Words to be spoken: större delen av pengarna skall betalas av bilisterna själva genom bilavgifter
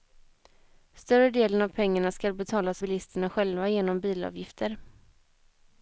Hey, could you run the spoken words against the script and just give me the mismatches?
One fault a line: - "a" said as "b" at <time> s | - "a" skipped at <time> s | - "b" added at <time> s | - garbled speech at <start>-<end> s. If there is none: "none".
- "av" skipped at 2.8 s